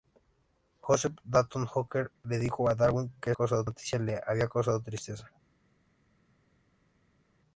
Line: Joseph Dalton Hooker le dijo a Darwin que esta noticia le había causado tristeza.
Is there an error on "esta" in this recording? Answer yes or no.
yes